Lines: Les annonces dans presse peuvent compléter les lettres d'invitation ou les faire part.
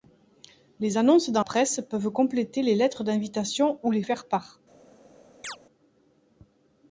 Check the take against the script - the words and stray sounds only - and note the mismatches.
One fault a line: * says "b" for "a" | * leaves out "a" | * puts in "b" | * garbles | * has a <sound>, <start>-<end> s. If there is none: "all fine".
* has a chirp, 5.4-5.6 s